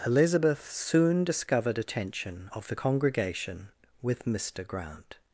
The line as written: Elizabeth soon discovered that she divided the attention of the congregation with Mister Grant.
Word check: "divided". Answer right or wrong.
wrong